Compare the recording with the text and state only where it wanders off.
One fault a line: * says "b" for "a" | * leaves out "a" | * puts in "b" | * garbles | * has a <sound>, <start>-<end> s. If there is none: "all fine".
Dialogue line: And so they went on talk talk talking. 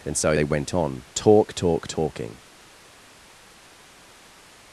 all fine